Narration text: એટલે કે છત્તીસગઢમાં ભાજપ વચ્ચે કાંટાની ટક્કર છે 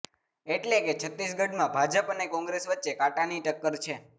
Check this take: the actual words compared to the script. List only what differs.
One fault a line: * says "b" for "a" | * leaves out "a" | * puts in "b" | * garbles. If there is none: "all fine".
* puts in "અને કોંગ્રેસ"